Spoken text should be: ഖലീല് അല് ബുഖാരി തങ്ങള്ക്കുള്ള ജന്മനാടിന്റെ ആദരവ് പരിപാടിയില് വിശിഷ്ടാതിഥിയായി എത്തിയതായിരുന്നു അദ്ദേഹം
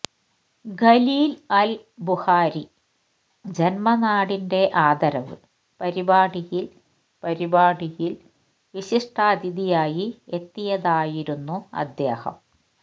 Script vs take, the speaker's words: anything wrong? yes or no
yes